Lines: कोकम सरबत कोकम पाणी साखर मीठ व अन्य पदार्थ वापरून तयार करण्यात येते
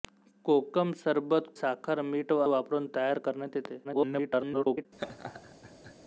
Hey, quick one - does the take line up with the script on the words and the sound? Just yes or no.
no